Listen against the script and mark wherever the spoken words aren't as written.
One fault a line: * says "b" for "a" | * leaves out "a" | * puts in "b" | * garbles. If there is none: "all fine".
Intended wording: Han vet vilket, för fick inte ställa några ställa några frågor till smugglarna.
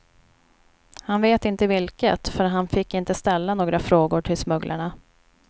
* puts in "inte"
* puts in "han"
* leaves out "ställa några"